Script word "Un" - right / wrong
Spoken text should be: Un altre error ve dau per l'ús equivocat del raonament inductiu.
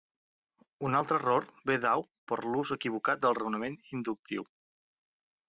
right